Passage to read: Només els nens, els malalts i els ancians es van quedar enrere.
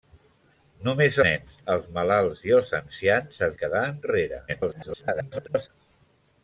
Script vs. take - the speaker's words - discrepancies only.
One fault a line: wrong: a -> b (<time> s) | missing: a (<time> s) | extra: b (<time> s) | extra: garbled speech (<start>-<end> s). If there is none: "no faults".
missing: els (1.2 s)
missing: van (3.6 s)
extra: garbled speech (4.5-5.7 s)